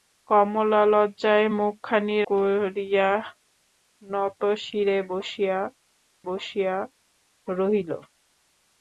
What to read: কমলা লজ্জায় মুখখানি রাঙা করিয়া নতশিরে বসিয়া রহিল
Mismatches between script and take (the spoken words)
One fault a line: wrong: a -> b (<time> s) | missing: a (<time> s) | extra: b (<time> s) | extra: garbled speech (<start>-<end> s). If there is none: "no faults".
missing: রাঙা (2.2 s)
extra: বসিয়া (6.3 s)